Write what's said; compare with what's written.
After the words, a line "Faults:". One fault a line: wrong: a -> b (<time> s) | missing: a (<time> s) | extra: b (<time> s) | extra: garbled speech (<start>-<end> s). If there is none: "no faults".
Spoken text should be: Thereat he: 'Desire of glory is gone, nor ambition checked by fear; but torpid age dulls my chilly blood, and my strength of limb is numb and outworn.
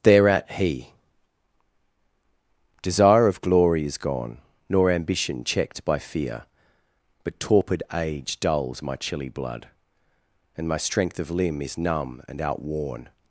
Thereat he: 'Desire of glory is gone, nor ambition checked by fear; but torpid age dulls my chilly blood, and my strength of limb is numb and outworn.
Faults:
no faults